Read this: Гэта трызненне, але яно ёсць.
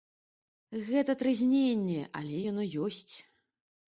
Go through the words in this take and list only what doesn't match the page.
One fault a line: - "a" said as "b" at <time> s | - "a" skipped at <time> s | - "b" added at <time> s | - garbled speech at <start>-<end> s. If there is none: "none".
none